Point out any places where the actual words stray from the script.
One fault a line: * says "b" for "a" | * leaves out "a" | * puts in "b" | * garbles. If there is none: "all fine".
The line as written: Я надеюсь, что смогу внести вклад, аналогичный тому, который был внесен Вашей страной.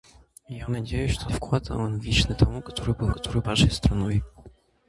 * leaves out "смогу внести"
* says "который" for "внесен"